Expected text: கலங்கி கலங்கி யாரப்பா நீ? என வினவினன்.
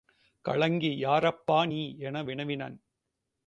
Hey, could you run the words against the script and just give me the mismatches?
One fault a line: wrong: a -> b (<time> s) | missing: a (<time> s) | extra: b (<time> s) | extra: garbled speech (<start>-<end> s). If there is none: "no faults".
missing: கலங்கி (0.9 s)